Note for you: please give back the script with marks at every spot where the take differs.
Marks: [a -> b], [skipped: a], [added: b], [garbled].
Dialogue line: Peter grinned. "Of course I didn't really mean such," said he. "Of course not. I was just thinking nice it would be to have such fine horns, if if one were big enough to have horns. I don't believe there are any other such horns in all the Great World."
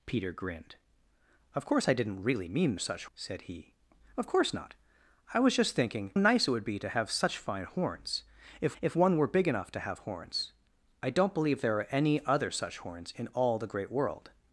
Peter grinned. "Of course I didn't really mean such," said he. "Of course not. I was just thinking nice it would be to have such fine horns, if if one were big enough to have horns. I don't believe there are any other such horns in all the Great World."